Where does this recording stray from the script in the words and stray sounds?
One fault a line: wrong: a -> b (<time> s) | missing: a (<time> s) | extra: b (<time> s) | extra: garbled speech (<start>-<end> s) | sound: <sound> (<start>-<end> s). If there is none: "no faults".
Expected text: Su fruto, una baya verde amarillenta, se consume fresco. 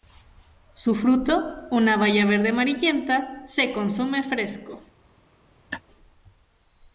sound: laugh (5.7-5.8 s)